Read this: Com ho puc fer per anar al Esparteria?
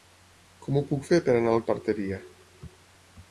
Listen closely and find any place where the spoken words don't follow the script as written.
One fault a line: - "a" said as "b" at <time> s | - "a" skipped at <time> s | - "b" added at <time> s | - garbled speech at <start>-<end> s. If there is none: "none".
none